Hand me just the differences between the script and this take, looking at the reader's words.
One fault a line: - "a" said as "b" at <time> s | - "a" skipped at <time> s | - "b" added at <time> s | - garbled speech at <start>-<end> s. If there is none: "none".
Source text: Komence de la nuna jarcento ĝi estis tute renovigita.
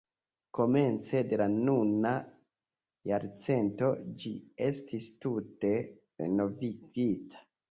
none